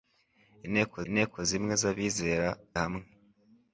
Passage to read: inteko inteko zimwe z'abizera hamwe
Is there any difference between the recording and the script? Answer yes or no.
no